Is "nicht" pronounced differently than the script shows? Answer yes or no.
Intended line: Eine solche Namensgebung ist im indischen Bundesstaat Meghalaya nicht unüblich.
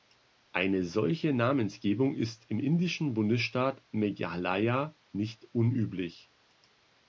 no